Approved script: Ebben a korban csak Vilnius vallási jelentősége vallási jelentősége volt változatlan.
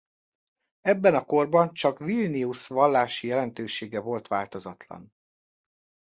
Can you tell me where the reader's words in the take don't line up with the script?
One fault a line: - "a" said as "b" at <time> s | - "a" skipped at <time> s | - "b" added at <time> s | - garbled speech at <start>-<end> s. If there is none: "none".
- "vallási jelentősége" skipped at 4.0 s